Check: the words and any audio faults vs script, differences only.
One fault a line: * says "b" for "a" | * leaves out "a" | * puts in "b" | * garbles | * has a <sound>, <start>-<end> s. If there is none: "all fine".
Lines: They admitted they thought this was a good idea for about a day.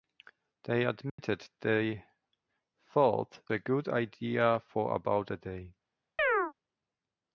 * has a dropout, 1.1-1.2 s
* leaves out "this was"
* has a chirp, 6.2-6.5 s